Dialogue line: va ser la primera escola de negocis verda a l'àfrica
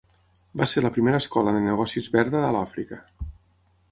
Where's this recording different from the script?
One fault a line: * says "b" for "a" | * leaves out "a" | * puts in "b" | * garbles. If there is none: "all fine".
all fine